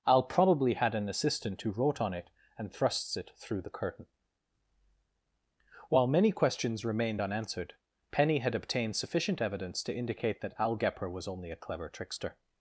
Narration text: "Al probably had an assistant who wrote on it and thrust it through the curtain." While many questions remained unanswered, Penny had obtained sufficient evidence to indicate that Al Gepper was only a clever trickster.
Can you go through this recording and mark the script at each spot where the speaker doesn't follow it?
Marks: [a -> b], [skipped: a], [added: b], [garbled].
"Al probably had an assistant who wrote on it and [thrust -> thrusts] it through the curtain." While many questions remained unanswered, Penny had obtained sufficient evidence to indicate that Al Gepper was only a clever trickster.